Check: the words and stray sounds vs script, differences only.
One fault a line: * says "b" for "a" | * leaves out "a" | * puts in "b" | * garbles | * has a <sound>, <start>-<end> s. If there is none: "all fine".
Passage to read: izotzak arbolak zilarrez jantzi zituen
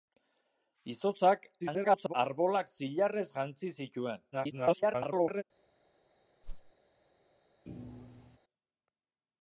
* garbles
* garbles
* has a whoosh, 6.4-6.7 s
* has a thud, 7.6-8.4 s